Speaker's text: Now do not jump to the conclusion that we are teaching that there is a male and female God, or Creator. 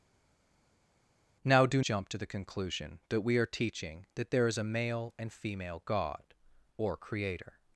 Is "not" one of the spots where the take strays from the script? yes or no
yes